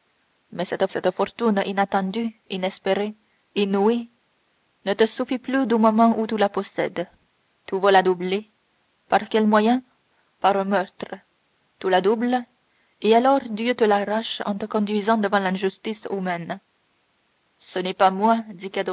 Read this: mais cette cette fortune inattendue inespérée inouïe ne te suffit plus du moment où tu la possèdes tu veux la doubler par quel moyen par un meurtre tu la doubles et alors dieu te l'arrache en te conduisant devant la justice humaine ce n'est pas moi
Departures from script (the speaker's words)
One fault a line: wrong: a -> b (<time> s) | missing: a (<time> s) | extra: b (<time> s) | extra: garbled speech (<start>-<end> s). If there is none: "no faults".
no faults